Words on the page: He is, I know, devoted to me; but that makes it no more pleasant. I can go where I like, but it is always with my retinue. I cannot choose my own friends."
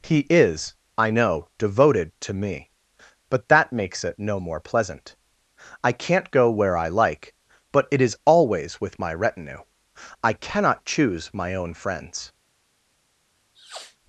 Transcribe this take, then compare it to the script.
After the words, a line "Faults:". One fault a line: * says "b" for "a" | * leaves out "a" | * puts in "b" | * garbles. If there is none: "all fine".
He is, I know, devoted to me; but that makes it no more pleasant. I can't go where I like, but it is always with my retinue. I cannot choose my own friends."
Faults:
* says "can't" for "can"